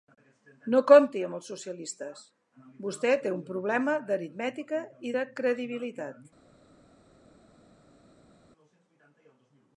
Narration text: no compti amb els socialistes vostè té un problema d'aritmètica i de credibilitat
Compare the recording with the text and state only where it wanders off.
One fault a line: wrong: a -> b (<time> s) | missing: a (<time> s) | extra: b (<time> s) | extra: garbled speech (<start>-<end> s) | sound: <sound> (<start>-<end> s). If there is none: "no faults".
no faults